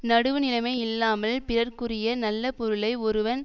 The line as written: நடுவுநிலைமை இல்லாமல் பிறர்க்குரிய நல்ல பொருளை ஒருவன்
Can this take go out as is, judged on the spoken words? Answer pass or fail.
pass